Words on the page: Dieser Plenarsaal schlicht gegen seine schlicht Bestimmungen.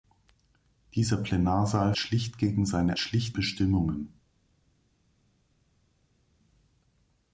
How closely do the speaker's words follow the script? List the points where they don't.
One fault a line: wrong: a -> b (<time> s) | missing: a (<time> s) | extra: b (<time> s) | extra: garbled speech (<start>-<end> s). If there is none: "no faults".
no faults